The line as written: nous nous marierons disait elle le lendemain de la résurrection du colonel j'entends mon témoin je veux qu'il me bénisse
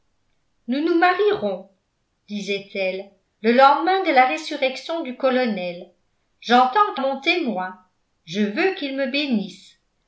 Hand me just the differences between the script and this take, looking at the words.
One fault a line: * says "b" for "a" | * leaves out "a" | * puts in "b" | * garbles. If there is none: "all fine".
all fine